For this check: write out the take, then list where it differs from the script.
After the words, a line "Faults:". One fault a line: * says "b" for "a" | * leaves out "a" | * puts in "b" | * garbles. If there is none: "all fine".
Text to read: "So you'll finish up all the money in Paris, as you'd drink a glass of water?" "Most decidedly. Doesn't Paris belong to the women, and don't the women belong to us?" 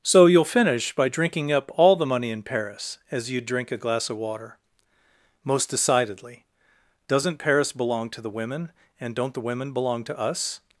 "So you'll finish by drinking up all the money in Paris, as you'd drink a glass of water?" "Most decidedly. Doesn't Paris belong to the women, and don't the women belong to us?"
Faults:
* puts in "by drinking"